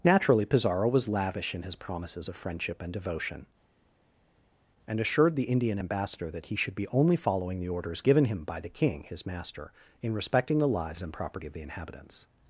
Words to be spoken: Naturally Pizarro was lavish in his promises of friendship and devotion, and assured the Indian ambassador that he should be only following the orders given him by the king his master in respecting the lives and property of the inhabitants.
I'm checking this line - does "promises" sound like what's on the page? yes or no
yes